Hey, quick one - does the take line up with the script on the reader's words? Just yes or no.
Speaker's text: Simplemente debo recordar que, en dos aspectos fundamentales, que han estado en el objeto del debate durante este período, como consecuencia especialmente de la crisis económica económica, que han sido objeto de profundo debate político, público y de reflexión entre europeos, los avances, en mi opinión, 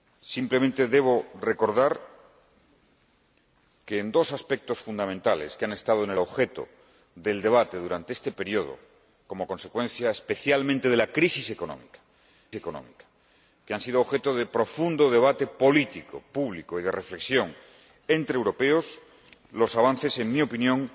yes